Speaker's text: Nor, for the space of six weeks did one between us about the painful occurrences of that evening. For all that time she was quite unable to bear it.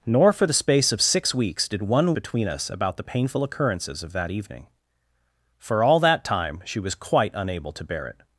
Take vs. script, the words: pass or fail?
pass